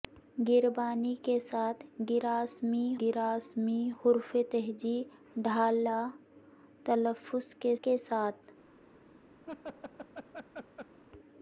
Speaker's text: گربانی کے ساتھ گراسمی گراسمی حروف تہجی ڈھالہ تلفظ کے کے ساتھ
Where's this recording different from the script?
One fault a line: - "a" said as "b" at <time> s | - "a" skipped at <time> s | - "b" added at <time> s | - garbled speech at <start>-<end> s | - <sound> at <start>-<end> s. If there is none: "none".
- laugh at 9.4-11.0 s